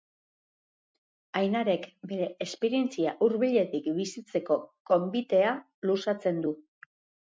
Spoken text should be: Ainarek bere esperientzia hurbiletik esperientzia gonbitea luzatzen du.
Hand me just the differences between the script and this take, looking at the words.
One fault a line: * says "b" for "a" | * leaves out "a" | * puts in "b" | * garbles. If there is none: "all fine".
* says "bizitzeko" for "esperientzia"